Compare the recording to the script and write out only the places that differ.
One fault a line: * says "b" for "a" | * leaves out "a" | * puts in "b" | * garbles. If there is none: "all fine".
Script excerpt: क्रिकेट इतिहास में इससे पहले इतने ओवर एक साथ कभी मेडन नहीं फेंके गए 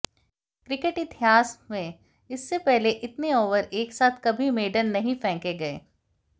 all fine